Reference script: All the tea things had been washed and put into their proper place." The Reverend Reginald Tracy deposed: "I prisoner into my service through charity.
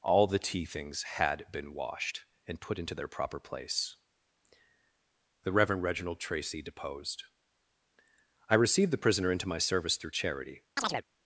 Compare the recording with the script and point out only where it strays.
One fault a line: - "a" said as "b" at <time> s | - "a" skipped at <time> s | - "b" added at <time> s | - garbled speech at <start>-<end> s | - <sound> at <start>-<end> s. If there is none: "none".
- "received the" added at 8.6 s
- chirp at 10.8-11.0 s